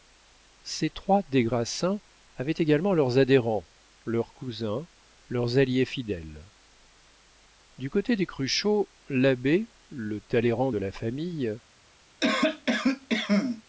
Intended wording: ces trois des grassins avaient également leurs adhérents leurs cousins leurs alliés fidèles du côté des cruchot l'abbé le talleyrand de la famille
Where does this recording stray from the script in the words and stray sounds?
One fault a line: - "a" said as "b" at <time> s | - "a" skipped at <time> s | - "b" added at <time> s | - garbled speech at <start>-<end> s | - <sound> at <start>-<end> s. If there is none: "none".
- cough at 12.2-13.6 s